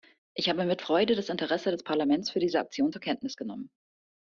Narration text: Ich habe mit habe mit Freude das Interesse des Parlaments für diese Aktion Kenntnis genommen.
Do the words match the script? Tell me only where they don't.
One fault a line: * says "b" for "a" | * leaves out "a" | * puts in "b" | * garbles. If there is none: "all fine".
* leaves out "habe mit"
* puts in "zur"